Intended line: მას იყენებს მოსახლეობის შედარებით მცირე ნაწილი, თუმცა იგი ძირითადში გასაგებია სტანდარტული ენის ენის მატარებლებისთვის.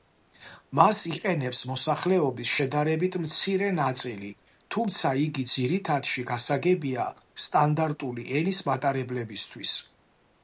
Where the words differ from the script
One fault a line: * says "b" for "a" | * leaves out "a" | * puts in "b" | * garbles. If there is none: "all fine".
* leaves out "ენის"